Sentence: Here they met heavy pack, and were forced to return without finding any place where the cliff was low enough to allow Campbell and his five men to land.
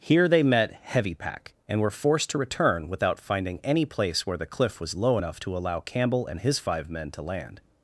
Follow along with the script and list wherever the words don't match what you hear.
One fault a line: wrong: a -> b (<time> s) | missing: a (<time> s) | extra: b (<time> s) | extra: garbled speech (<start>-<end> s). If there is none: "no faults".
no faults